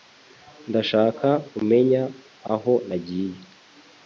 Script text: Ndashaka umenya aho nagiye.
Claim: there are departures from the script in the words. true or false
false